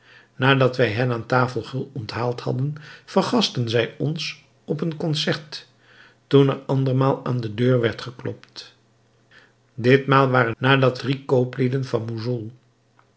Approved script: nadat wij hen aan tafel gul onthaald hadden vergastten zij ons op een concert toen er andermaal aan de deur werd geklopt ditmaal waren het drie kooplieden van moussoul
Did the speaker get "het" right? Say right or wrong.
wrong